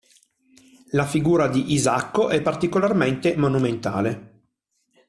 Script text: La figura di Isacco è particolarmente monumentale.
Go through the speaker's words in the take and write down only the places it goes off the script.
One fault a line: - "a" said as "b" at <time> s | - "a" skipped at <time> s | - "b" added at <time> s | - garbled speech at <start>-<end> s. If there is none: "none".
none